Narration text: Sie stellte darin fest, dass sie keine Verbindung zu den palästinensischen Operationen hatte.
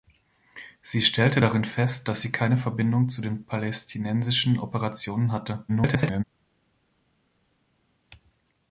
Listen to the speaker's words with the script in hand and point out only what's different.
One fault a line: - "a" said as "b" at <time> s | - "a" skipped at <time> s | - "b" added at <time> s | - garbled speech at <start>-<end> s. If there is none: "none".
- garbled speech at 5.7-6.2 s